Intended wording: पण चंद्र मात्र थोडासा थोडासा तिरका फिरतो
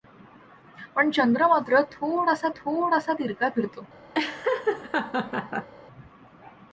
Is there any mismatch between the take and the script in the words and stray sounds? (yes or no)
yes